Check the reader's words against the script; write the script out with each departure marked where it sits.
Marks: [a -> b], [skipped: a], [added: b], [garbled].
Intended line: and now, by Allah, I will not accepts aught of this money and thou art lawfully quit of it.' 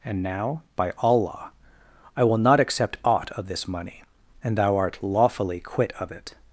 and now, by Allah, I will not [accepts -> accept] aught of this money and thou art lawfully quit of it.'